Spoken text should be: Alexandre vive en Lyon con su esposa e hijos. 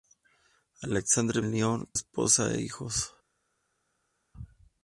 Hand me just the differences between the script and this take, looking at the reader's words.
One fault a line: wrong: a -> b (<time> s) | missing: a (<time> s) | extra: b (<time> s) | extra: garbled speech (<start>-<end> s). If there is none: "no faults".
missing: vive (1.4 s)
missing: con su (1.9 s)